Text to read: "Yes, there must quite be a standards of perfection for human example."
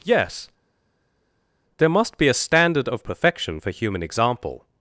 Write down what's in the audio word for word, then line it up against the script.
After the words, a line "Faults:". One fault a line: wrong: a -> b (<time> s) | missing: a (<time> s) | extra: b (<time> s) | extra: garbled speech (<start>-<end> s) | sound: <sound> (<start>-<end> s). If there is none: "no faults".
"Yes, there must be a standard of perfection for human example."
Faults:
missing: quite (2.2 s)
wrong: standards -> standard (2.3 s)